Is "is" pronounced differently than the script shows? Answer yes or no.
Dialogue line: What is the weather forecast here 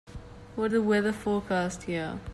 yes